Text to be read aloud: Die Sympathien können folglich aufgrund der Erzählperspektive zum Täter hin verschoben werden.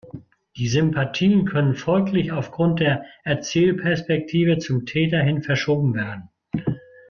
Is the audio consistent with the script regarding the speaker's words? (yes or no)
yes